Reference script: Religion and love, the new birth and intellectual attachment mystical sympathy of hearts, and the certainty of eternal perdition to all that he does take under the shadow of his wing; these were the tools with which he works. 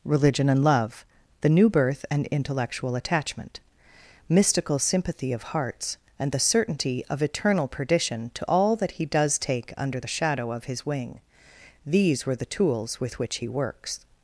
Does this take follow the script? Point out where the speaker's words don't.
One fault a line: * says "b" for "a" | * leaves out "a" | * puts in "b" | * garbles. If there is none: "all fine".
all fine